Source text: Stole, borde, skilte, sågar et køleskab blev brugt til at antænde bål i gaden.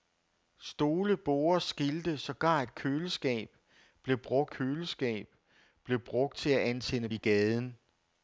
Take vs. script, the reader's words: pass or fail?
fail